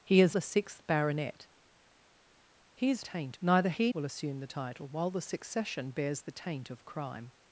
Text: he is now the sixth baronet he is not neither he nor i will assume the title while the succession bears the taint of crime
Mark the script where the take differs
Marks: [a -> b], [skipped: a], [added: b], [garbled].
he is [skipped: now] the sixth baronet he is [not -> taint] neither he [skipped: nor i] will assume the title while the succession bears the taint of crime